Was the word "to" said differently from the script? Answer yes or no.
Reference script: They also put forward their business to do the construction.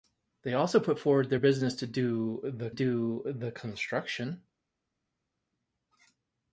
no